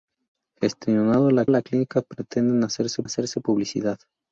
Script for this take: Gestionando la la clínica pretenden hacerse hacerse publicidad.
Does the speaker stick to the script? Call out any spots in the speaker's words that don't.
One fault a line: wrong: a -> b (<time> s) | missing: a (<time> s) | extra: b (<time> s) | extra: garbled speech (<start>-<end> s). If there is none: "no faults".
no faults